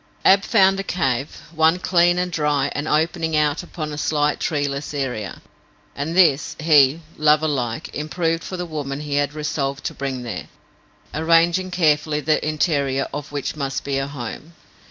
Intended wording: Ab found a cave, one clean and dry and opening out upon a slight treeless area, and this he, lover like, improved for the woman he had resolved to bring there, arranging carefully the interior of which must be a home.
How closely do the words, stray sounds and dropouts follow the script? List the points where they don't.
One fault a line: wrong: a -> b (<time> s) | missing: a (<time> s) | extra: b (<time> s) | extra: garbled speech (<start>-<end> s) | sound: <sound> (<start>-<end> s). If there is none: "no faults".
no faults